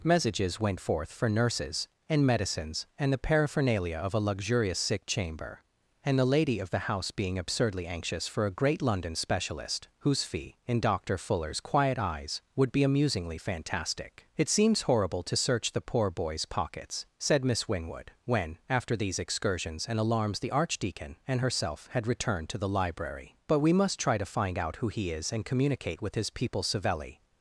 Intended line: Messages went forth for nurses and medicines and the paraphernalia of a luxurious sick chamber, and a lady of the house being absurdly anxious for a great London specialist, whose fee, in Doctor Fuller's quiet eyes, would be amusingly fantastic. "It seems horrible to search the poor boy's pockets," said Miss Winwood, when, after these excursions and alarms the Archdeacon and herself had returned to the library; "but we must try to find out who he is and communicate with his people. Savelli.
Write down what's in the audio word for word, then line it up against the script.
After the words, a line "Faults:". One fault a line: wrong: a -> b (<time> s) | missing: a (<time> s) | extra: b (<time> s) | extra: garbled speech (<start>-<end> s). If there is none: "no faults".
Messages went forth for nurses and medicines and the paraphernalia of a luxurious sick chamber, and the lady of the house being absurdly anxious for a great London specialist, whose fee, in Doctor Fuller's quiet eyes, would be amusingly fantastic. "It seems horrible to search the poor boy's pockets," said Miss Winwood, when, after these excursions and alarms the Archdeacon and herself had returned to the library; "but we must try to find out who he is and communicate with his people. Savelli.
Faults:
wrong: a -> the (6.2 s)